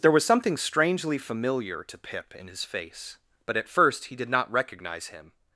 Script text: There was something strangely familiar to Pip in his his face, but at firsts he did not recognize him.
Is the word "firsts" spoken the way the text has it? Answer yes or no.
no